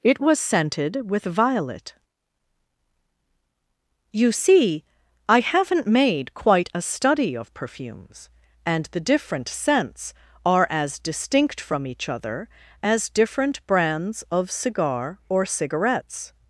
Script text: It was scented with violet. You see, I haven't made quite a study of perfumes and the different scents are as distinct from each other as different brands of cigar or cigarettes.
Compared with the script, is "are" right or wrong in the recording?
right